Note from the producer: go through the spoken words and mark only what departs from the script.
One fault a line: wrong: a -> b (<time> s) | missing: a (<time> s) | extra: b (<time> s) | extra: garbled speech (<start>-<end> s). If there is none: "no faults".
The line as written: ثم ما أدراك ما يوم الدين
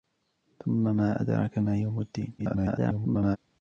extra: garbled speech (2.4-3.4 s)